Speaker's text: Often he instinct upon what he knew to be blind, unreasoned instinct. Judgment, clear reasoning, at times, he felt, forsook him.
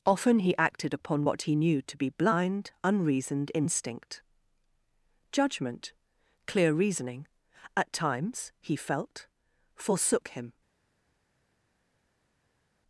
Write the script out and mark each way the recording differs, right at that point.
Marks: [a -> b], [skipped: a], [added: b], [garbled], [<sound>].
Often he [instinct -> acted] upon what he knew to be blind, unreasoned instinct. Judgment, clear reasoning, at times, he felt, forsook him.